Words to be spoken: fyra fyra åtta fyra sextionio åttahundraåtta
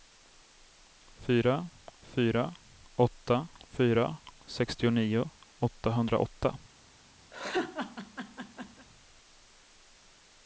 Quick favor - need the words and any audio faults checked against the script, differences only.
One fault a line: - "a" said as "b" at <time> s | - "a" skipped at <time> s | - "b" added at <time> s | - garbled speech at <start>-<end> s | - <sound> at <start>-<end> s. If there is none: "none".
- laugh at 7.3-8.9 s